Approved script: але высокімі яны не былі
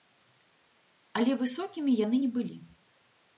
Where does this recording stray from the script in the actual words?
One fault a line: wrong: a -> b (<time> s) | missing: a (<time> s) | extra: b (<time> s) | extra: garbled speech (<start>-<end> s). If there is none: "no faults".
no faults